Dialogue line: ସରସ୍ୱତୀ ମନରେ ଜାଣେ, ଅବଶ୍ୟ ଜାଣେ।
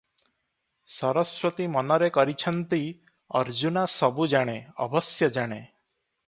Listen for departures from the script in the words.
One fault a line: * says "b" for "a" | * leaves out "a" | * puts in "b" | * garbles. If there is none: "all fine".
* puts in "କରିଛନ୍ତି ଅର୍ଜୁନା ସବୁ"